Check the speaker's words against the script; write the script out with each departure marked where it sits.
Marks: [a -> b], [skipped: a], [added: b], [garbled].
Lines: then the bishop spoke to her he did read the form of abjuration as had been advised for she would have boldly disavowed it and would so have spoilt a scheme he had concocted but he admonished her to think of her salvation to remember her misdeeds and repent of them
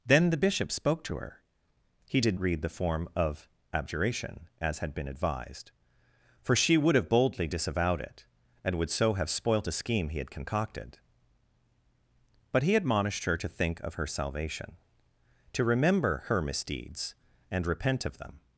then the bishop spoke to her he did read the form of abjuration as had been advised for she would have boldly disavowed it and would so have spoilt a scheme he had concocted but he admonished her to think of her salvation to remember her misdeeds and repent of them